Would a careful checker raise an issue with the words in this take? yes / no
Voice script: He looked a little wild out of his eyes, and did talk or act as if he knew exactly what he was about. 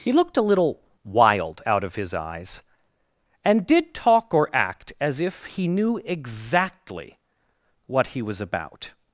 no